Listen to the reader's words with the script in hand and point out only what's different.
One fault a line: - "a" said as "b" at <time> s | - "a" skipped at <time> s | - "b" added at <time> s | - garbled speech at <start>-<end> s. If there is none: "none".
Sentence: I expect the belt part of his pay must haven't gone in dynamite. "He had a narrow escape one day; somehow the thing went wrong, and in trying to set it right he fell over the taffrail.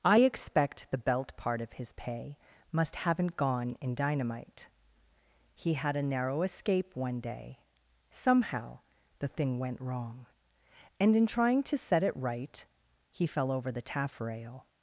none